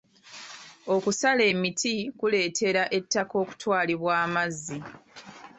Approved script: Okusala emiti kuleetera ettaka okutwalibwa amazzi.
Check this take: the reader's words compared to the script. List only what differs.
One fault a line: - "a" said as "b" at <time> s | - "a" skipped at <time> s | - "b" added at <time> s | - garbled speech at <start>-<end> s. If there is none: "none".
none